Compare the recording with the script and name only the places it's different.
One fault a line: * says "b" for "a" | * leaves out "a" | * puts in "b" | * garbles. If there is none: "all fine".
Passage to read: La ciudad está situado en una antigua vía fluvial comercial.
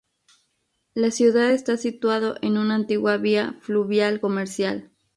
all fine